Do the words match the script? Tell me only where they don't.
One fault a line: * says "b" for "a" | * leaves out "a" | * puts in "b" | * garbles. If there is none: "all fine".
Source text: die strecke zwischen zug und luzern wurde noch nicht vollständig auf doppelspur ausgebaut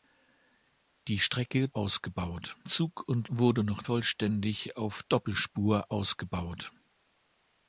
* says "ausgebaut" for "zwischen"
* leaves out "luzern"
* leaves out "nicht"